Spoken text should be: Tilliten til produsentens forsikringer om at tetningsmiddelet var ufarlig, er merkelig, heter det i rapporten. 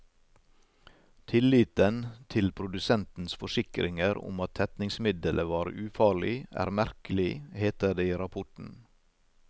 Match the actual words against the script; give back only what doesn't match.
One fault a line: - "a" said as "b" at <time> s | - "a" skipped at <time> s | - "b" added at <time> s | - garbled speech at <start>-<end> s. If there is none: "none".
none